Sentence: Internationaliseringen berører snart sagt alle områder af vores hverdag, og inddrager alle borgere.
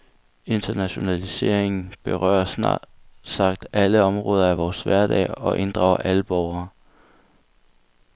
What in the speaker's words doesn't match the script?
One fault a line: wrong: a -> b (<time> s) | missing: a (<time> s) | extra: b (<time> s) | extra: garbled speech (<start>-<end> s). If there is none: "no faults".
no faults